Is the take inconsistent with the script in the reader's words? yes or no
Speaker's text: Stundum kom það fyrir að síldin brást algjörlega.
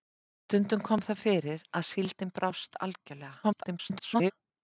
yes